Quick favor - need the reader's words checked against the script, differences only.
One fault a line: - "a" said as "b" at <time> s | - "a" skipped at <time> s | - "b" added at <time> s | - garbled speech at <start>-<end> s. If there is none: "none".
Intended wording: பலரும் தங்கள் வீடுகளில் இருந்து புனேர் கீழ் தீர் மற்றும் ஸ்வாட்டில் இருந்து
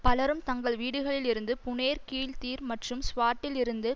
none